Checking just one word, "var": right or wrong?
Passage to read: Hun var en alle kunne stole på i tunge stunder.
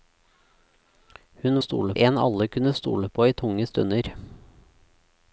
wrong